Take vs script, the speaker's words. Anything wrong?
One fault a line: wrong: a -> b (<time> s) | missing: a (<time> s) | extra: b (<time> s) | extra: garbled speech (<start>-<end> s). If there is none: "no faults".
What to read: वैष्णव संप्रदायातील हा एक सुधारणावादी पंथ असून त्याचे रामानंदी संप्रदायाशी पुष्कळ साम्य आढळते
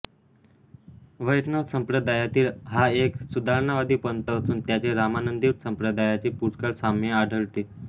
no faults